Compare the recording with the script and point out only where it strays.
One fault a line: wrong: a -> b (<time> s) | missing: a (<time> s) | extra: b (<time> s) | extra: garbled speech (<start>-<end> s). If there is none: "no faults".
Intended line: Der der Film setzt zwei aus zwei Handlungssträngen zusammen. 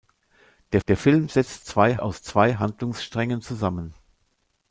no faults